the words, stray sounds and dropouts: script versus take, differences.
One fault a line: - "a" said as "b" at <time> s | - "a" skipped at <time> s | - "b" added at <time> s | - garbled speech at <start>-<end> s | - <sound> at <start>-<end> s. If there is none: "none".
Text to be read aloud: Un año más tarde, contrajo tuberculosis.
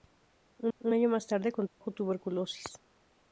- "un" added at 0.8 s
- dropout at 1.7-1.8 s